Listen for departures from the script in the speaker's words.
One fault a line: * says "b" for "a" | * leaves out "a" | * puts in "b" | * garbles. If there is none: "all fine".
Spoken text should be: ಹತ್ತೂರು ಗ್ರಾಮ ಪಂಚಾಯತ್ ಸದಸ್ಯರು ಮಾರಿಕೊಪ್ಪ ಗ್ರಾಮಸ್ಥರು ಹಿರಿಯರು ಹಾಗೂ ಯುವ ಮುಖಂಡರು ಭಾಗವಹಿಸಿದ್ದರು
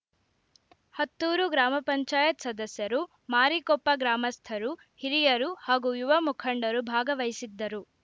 all fine